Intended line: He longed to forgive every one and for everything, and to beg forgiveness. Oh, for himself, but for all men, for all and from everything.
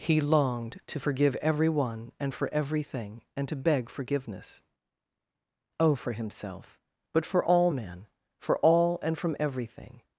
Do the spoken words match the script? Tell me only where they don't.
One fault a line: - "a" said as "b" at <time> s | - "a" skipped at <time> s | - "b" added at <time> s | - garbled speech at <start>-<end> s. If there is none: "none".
none